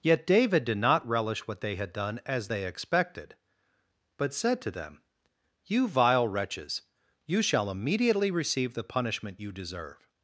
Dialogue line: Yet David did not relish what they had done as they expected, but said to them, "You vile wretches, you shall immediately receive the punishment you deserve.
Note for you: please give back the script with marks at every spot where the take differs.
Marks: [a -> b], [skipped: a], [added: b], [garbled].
Yet David did not relish what they had done as they expected, but said to them, "You vile wretches, you shall immediately receive the punishment you deserve.